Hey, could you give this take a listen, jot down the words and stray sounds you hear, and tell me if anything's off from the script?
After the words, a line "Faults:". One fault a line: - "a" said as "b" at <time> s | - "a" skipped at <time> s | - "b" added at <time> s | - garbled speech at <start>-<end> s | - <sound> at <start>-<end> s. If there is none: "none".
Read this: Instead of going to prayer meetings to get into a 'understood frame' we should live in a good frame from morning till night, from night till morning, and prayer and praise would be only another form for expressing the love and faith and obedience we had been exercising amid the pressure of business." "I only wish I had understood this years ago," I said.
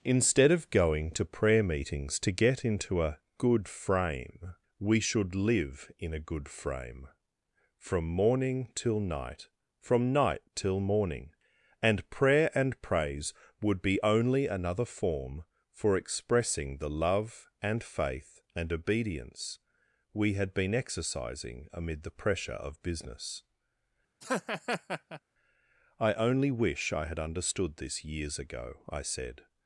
Instead of going to prayer meetings to get into a 'good frame' we should live in a good frame from morning till night, from night till morning, and prayer and praise would be only another form for expressing the love and faith and obedience we had been exercising amid the pressure of business." "I only wish I had understood this years ago," I said.
Faults:
- "understood" said as "good" at 3.4 s
- laugh at 24.2-25.2 s